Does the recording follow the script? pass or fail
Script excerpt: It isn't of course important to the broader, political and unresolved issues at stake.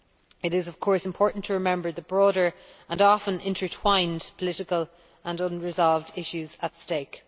fail